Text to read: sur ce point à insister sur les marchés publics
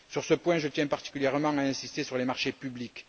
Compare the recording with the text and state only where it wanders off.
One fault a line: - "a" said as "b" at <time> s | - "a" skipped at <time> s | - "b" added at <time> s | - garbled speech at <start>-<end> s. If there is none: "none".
- "je tiens particulièrement" added at 0.6 s